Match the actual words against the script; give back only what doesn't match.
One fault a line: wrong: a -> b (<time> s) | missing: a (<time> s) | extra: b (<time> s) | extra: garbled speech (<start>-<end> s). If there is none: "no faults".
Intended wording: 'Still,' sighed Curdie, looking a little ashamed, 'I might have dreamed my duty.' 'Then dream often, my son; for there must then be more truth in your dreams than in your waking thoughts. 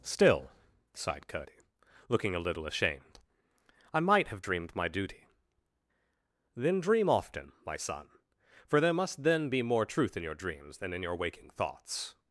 no faults